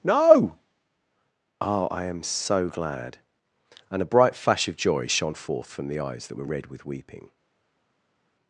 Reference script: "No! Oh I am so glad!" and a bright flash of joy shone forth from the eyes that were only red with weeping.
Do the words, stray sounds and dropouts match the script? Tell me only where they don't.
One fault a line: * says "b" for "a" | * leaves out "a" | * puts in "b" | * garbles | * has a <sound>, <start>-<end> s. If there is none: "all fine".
* leaves out "only"